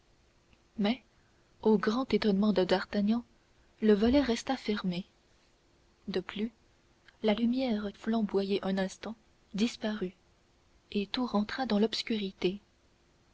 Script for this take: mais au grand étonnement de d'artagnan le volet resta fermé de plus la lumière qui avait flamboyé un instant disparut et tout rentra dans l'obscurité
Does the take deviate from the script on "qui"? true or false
true